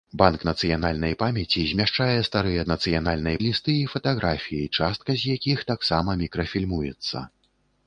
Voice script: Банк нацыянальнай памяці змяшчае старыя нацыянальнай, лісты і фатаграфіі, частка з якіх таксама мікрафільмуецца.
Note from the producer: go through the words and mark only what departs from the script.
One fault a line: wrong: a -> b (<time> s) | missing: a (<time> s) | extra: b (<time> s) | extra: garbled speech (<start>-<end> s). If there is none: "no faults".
no faults